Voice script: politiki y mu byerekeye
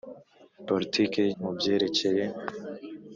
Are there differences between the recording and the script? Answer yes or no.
no